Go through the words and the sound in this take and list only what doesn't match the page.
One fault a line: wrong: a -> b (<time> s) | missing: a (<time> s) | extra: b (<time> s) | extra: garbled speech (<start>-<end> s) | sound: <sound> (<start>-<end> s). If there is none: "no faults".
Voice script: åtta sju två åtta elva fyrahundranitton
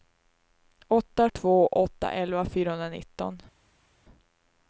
missing: sju (1.3 s)